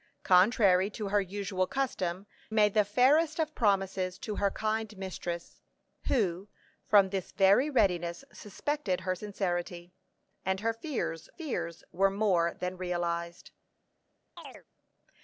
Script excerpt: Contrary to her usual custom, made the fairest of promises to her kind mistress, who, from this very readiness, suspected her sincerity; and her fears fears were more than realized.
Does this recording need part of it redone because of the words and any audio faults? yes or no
yes